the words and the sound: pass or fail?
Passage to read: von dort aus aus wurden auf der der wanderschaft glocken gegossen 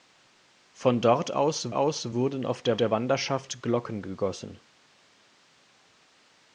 pass